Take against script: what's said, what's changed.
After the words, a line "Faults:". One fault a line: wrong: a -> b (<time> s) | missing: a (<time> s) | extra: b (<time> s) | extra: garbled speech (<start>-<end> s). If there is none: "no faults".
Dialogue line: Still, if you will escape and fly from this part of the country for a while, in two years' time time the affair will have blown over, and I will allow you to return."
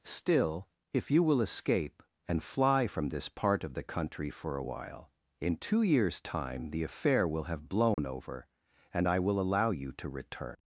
Still, if you will escape and fly from this part of the country for a while, in two years' time the affair will have blown over, and I will allow you to return."
Faults:
missing: time (6.7 s)